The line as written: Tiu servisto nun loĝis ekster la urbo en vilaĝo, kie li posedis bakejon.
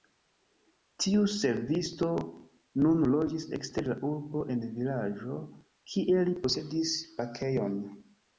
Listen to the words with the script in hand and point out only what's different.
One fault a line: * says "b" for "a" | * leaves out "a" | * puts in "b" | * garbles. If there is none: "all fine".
all fine